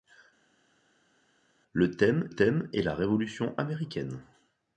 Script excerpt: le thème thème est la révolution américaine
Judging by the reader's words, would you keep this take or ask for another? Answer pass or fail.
pass